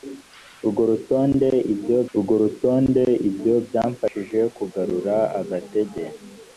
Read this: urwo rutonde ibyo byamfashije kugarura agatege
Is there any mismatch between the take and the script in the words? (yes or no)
yes